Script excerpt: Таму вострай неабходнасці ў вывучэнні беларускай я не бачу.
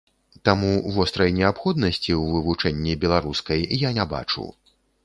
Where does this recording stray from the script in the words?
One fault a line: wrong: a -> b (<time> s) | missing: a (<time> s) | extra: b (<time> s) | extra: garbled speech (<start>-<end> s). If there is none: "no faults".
no faults